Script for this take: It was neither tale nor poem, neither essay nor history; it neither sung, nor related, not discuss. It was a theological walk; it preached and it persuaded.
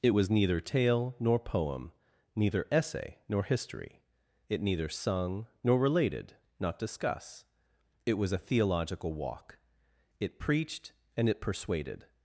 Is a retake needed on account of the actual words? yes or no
no